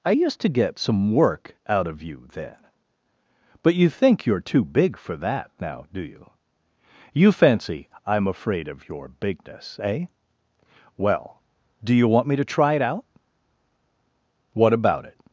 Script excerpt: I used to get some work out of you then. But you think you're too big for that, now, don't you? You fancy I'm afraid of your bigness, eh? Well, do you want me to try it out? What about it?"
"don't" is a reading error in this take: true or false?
true